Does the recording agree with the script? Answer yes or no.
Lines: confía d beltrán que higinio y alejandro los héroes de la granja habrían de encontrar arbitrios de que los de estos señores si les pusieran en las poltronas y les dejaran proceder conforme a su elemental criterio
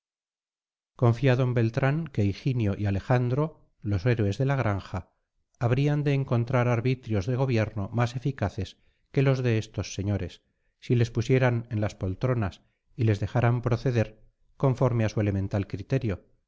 no